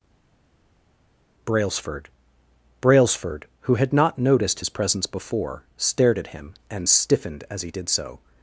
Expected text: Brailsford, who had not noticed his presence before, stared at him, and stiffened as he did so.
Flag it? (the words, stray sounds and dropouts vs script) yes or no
yes